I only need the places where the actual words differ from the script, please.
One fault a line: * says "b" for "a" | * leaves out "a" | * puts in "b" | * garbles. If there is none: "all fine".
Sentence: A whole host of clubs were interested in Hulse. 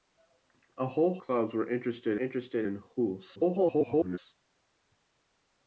* leaves out "host of"
* puts in "interested"
* garbles